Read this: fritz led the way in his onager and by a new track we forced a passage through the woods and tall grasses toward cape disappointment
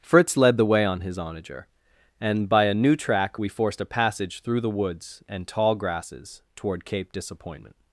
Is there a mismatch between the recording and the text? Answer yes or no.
yes